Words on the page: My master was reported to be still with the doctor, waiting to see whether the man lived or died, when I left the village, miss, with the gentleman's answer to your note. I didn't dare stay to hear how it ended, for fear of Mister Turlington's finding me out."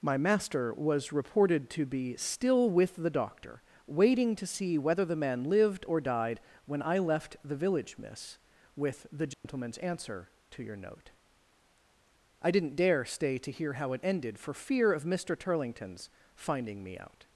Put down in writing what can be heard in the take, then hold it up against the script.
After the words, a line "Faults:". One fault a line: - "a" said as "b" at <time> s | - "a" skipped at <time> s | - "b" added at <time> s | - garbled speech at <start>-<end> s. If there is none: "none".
My master was reported to be still with the doctor, waiting to see whether the man lived or died, when I left the village, miss, with the gentleman's answer to your note. I didn't dare stay to hear how it ended, for fear of Mister Turlington's finding me out."
Faults:
none